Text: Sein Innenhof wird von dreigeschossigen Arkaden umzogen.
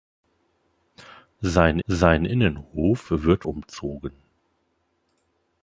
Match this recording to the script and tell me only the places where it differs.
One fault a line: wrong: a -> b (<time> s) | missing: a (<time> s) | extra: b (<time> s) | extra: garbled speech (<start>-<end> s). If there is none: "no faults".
extra: sein (1.9 s)
missing: von dreigeschossigen Arkaden (3.4 s)